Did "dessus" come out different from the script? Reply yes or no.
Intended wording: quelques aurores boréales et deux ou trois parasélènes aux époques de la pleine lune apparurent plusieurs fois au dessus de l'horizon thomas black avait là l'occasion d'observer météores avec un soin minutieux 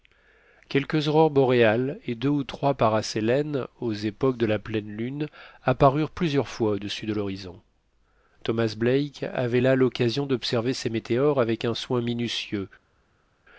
no